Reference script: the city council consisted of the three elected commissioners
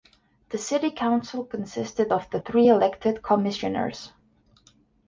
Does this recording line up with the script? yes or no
yes